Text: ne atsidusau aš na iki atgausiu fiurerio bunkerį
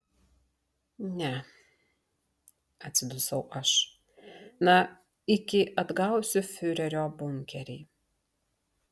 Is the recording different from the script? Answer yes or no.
no